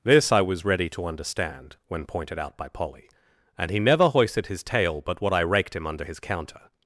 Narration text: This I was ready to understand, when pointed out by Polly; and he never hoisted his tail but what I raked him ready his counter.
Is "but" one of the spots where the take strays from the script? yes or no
no